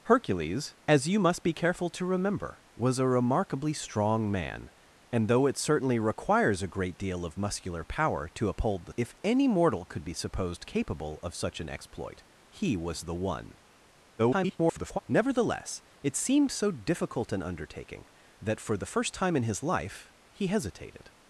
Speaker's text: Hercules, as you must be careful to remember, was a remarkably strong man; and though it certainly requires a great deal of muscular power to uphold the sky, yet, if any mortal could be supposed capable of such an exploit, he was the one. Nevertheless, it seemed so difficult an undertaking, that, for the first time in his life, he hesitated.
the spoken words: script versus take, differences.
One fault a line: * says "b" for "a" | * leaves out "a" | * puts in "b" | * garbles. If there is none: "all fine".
* leaves out "sky yet"
* garbles